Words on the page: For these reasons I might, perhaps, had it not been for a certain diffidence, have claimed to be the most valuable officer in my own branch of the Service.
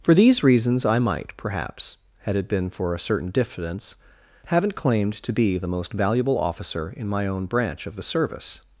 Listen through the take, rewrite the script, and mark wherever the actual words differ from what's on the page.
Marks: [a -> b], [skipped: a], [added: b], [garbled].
For these reasons I might, perhaps, had it [skipped: not] been for a certain diffidence, [have -> haven't] claimed to be the most valuable officer in my own branch of the Service.